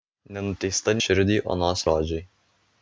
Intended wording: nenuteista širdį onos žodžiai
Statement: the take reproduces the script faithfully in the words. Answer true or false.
true